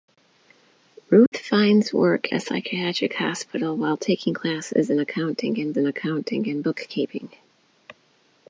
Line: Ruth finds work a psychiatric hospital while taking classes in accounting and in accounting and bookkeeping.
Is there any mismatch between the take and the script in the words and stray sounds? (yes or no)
yes